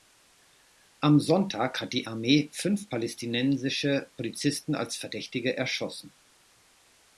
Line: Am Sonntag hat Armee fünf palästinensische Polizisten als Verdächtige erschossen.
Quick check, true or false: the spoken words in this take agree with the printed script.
false